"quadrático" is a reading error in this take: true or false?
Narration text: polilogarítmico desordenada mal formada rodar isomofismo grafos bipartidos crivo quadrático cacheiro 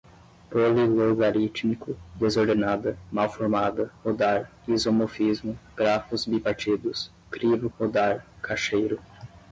true